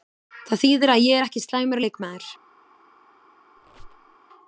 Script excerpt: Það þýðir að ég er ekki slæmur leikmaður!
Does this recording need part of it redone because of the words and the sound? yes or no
yes